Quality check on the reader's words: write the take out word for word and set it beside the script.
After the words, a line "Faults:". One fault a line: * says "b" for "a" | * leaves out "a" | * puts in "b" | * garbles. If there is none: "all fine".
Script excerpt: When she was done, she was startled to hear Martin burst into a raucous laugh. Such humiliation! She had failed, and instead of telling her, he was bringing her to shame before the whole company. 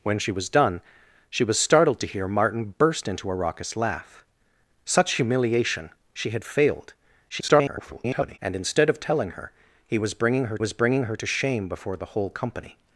When she was done, she was startled to hear Martin burst into a raucous laugh. Such humiliation! She had failed, [garbled] and instead of telling her, he was bringing her was bringing her to shame before the whole company.
Faults:
* garbles
* puts in "was bringing her"